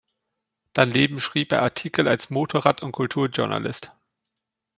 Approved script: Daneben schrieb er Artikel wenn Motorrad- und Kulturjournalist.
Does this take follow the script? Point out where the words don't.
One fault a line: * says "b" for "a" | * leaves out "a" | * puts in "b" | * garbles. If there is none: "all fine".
* says "als" for "wenn"